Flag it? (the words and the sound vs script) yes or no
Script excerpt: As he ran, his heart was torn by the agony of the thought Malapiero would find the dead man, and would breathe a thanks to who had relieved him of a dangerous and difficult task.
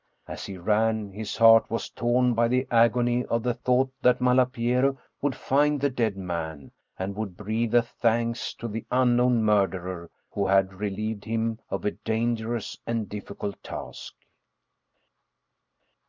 yes